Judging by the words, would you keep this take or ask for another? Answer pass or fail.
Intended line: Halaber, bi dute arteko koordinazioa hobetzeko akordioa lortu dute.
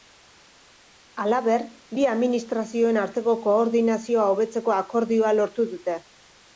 fail